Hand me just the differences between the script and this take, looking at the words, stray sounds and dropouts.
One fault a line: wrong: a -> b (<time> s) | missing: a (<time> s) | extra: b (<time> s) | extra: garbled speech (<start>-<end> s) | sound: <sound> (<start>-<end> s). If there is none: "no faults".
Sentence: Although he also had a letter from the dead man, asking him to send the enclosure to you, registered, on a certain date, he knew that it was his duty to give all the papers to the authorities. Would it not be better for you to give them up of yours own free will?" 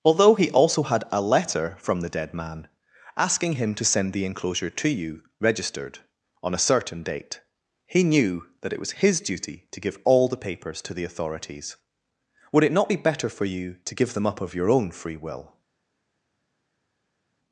wrong: yours -> your (14.5 s)